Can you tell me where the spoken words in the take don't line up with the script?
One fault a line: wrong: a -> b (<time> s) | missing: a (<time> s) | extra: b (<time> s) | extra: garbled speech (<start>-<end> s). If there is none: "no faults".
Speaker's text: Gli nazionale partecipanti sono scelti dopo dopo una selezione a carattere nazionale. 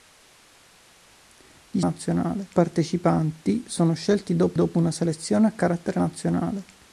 no faults